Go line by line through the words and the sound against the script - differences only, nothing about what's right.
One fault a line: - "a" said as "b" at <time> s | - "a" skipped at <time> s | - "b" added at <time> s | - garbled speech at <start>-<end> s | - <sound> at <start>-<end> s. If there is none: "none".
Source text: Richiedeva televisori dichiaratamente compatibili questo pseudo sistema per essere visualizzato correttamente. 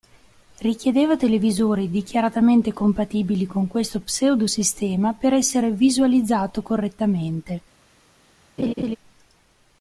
- "con" added at 3.5 s
- laugh at 8.6-9.0 s